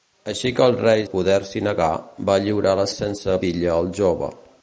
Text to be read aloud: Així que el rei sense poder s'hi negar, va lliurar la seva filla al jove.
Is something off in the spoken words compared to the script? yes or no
yes